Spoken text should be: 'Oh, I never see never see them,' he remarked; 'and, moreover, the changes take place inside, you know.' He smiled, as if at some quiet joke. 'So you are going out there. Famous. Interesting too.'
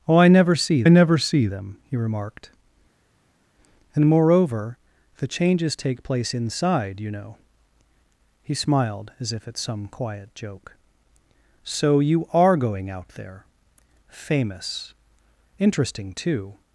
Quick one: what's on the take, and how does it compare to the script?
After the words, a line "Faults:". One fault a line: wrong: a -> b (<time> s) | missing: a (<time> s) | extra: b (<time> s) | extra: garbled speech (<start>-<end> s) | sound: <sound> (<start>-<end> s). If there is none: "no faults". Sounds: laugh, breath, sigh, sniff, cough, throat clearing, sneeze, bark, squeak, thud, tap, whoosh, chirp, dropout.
'Oh, I never see never see them,' he remarked; 'and, moreover, the changes take place inside, you know.' He smiled, as if at some quiet joke. 'So you are going out there. Famous. Interesting too.'
Faults:
no faults